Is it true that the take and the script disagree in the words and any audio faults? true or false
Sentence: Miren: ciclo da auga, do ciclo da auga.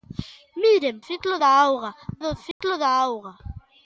true